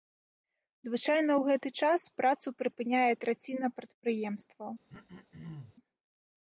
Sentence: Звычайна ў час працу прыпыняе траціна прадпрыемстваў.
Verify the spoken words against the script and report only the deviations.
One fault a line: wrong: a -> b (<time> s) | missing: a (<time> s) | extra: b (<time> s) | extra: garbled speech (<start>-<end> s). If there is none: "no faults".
extra: гэты (1.5 s)